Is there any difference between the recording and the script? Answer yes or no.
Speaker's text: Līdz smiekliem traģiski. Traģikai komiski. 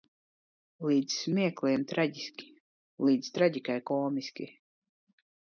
yes